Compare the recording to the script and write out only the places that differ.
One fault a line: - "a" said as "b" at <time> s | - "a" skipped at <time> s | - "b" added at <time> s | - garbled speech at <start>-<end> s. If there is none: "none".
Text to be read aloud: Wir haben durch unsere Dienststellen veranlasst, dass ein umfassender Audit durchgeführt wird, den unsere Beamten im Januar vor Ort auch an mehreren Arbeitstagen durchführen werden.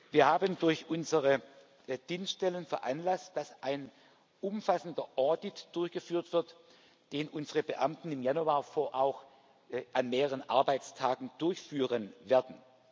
- "Ort" skipped at 8.9 s